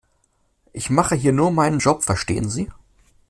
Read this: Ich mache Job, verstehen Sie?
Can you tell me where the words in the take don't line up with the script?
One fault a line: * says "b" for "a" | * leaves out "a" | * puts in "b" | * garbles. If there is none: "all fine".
* puts in "hier nur meinen"